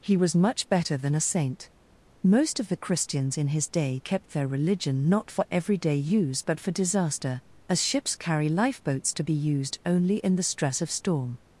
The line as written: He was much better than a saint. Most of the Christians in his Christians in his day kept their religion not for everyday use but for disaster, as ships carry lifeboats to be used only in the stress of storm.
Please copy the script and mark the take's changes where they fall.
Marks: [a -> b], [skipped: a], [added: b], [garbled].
He was much better than a saint. Most of the Christians in his [skipped: Christians in his] day kept their religion not for everyday use but for disaster, as ships carry lifeboats to be used only in the stress of storm.